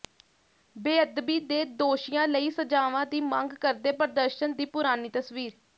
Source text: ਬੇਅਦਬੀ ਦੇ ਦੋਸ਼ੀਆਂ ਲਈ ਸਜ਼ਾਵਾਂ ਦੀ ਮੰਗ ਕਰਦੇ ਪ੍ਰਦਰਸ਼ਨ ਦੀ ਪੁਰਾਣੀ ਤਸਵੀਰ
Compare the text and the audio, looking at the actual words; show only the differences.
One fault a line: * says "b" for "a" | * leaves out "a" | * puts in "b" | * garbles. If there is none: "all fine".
all fine